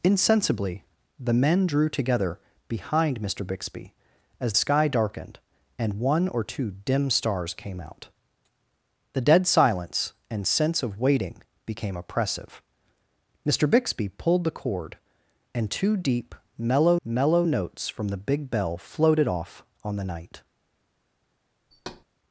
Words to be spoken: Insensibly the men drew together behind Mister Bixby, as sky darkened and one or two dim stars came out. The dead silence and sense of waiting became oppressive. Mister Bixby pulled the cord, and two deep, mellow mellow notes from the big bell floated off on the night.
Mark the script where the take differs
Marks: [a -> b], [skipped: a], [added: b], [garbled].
Insensibly the men drew together behind Mister Bixby, as sky darkened and one or two dim stars came out. The dead silence and sense of waiting became oppressive. Mister Bixby pulled the cord, and two deep, mellow mellow notes from the big bell floated off on the night.